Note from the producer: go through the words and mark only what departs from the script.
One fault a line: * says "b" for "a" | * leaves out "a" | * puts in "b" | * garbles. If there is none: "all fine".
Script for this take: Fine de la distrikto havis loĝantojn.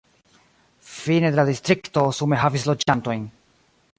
* puts in "sume"